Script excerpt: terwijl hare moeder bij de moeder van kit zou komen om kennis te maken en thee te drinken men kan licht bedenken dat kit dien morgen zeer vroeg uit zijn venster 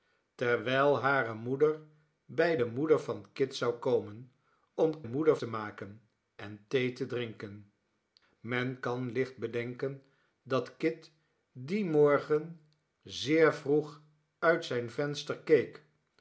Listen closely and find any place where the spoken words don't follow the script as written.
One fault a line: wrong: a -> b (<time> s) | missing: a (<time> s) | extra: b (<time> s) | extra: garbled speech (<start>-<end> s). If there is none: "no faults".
wrong: kennis -> moeder (5.0 s)